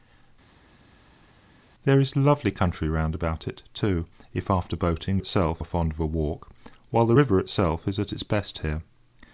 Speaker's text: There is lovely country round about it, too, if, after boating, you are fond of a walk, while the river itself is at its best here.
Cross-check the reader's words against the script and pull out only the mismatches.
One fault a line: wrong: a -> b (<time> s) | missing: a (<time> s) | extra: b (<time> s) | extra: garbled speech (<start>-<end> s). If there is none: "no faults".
wrong: you -> itself (5.2 s)